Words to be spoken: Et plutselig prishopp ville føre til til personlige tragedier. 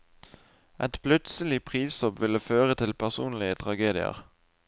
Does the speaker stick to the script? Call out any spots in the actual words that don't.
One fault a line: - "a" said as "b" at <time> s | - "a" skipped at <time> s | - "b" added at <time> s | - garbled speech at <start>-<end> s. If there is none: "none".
- "til" skipped at 2.9 s